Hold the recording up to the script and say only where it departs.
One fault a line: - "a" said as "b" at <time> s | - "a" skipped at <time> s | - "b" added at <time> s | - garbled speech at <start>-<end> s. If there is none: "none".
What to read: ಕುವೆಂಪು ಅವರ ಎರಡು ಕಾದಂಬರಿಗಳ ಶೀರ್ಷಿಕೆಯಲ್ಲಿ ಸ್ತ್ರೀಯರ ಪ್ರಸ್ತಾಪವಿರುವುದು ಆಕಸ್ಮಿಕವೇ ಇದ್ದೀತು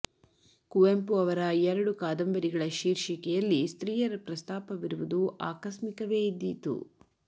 none